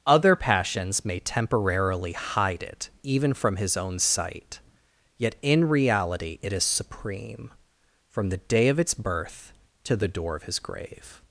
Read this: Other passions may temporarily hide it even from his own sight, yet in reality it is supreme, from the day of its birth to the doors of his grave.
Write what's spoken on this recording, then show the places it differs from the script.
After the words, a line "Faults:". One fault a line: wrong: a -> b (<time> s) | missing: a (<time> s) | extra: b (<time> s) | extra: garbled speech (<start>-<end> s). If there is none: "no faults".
Other passions may temporarily hide it even from his own sight, yet in reality it is supreme, from the day of its birth to the door of his grave.
Faults:
wrong: doors -> door (10.1 s)